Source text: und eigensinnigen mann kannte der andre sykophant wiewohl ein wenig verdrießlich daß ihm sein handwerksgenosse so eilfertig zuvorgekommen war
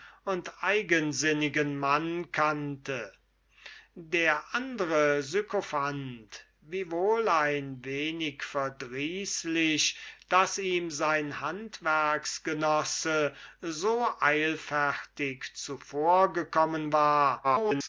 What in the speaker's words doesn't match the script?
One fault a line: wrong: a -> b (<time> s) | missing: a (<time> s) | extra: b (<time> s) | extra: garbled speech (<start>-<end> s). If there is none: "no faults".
extra: garbled speech (17.4-17.9 s)